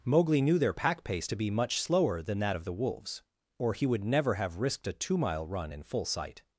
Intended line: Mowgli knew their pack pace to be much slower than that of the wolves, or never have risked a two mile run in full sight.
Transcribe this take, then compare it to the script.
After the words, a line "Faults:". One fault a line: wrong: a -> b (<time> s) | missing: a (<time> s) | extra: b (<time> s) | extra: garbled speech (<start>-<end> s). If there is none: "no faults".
Mowgli knew their pack pace to be much slower than that of the wolves, or he would never have risked a two mile run in full sight.
Faults:
extra: he would (3.7 s)